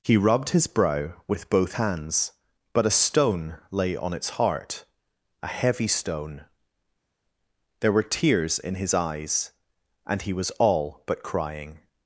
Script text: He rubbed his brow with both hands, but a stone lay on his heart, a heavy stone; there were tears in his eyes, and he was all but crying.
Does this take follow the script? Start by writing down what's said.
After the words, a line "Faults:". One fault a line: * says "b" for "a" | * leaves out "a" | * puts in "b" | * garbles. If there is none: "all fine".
He rubbed his brow with both hands, but a stone lay on its heart, a heavy stone; there were tears in his eyes, and he was all but crying.
Faults:
* says "its" for "his"